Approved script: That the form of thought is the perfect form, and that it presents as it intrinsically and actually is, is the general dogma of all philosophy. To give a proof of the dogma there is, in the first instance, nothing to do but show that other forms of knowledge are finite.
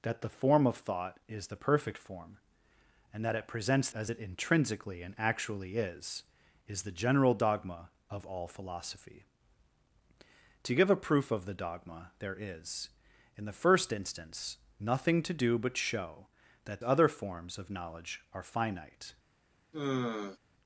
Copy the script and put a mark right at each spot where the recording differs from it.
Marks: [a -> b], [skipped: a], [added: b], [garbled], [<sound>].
That the form of thought is the perfect form, and that it presents as it intrinsically and actually is, is the general dogma of all philosophy. To give a proof of the dogma there is, in the first instance, nothing to do but show that other forms of knowledge are finite. [sigh]